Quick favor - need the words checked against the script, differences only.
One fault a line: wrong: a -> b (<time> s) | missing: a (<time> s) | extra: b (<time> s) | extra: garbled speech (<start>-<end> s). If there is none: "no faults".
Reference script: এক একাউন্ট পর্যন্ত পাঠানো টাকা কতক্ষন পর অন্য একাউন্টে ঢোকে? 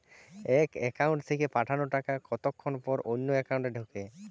wrong: পর্যন্ত -> থেকে (1.3 s)